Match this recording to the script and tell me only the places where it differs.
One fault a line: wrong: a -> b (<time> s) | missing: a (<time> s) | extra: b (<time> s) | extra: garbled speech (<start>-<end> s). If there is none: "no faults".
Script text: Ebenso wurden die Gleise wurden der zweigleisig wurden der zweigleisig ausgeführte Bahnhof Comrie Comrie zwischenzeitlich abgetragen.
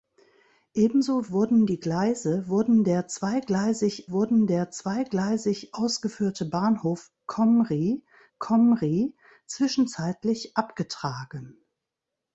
no faults